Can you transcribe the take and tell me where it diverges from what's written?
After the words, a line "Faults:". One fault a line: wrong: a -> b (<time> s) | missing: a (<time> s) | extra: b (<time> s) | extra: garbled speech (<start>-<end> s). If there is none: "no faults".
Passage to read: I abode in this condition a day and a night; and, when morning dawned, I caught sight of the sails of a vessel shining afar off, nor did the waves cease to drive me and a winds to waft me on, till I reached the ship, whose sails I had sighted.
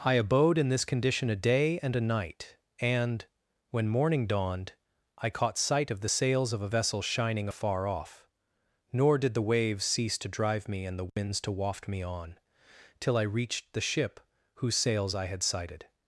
I abode in this condition a day and a night; and, when morning dawned, I caught sight of the sails of a vessel shining afar off, nor did the waves cease to drive me and the winds to waft me on, till I reached the ship, whose sails I had sighted.
Faults:
wrong: a -> the (11.0 s)